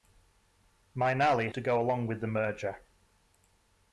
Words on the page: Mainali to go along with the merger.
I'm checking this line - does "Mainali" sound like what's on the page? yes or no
yes